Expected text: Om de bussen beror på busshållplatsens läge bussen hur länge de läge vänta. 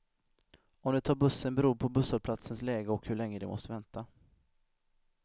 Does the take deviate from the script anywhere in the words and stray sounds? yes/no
yes